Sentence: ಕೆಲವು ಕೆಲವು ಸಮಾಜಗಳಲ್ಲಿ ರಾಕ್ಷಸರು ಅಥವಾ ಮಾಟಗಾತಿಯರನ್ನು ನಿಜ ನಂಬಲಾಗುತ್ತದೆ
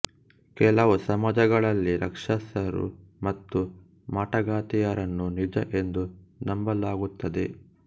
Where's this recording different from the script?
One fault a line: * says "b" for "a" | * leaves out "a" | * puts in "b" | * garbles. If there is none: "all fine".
* leaves out "ಕೆಲವು"
* says "ಮತ್ತು" for "ಅಥವಾ"
* puts in "ಎಂದು"